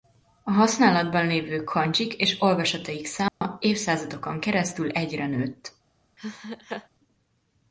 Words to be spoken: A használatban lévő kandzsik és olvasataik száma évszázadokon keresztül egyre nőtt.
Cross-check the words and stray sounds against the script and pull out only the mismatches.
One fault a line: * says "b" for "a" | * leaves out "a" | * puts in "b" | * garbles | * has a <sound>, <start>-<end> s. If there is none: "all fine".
* has a dropout, 3.3-3.4 s
* has a laugh, 6.2-6.9 s